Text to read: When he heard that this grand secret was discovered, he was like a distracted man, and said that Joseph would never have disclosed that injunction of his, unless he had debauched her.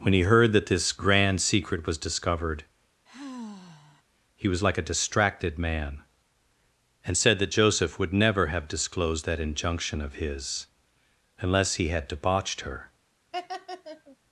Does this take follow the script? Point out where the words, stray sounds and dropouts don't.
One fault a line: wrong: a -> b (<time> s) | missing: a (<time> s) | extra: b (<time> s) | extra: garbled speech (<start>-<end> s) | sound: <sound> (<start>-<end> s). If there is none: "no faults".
sound: sigh (3.1-4.0 s)
sound: laugh (13.3-14.2 s)